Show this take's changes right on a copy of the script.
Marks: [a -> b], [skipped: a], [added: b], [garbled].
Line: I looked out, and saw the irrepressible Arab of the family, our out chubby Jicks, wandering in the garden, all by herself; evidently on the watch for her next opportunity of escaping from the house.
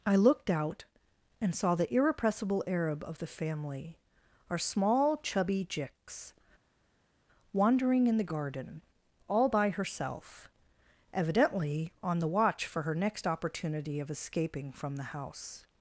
I looked out, and saw the irrepressible Arab of the family, our [out -> small] chubby Jicks, wandering in the garden, all by herself; evidently on the watch for her next opportunity of escaping from the house.